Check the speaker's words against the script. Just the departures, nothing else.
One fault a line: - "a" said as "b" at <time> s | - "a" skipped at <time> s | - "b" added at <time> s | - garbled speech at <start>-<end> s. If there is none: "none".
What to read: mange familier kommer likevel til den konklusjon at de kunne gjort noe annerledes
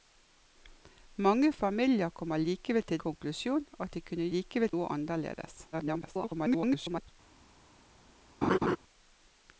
- "den" skipped at 3.0 s
- "gjort" said as "likevel" at 4.3 s
- garbled speech at 5.7-7.1 s